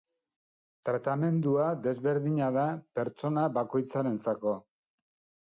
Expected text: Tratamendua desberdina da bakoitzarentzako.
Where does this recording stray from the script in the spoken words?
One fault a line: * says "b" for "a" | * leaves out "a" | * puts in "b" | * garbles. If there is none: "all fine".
* puts in "pertsona"